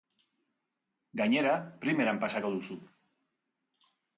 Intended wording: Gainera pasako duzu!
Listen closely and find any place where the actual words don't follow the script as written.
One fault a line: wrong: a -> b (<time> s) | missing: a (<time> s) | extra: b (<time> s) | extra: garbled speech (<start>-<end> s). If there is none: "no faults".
extra: primeran (1.9 s)